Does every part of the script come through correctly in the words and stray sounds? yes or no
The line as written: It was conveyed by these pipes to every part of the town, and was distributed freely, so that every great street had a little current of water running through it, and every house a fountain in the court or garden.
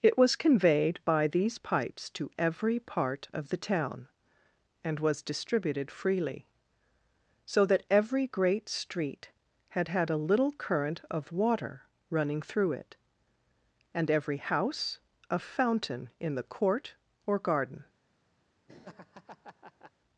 no